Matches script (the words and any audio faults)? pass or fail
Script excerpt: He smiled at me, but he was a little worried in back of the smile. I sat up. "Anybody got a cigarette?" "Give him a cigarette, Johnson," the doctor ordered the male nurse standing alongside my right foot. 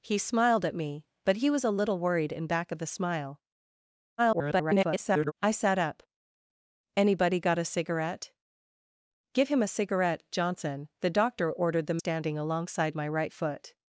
fail